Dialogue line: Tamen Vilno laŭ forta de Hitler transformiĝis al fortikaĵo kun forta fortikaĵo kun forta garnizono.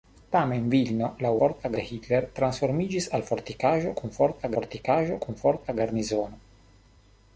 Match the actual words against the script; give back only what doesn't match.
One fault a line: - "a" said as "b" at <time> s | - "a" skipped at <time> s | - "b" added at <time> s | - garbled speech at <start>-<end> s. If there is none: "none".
none